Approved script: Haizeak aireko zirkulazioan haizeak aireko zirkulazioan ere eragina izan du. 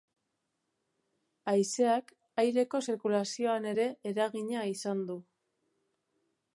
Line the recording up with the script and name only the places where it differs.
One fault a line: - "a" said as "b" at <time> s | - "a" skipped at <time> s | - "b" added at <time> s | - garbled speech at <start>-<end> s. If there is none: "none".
- "haizeak aireko zirkulazioan" skipped at 3.7 s